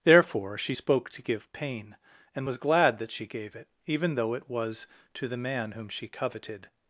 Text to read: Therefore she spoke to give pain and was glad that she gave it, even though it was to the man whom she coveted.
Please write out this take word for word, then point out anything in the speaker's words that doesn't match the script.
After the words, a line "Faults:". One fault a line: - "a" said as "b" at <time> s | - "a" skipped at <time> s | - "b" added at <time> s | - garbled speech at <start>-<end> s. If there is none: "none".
Therefore she spoke to give pain and was glad that she gave it, even though it was to the man whom she coveted.
Faults:
none